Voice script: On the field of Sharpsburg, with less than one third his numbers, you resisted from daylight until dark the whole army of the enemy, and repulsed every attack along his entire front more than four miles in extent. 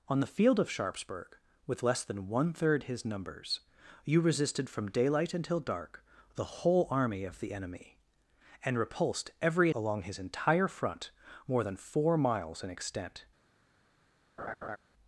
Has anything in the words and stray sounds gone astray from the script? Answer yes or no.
yes